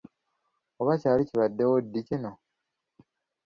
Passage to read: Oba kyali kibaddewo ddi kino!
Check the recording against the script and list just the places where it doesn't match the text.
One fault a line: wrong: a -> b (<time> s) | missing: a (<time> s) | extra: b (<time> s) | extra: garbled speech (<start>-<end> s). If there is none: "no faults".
no faults